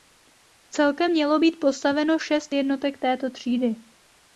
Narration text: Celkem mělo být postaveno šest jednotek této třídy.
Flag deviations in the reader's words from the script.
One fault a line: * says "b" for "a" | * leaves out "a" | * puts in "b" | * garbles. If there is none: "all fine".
all fine